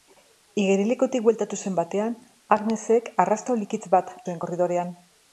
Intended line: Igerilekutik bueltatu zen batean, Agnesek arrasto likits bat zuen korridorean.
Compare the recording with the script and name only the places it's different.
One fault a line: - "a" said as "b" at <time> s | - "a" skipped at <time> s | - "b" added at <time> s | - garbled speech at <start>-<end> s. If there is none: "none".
none